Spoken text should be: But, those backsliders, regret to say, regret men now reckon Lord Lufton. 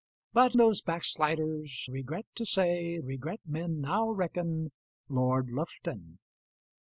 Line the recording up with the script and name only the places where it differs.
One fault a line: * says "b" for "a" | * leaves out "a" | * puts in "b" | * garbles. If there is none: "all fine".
all fine